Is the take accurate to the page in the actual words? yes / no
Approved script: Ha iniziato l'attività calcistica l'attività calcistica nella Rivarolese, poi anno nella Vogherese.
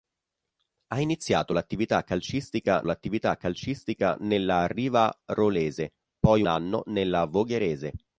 yes